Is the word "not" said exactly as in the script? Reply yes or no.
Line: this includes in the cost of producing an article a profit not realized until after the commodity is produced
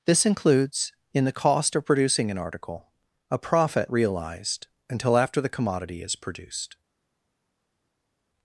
no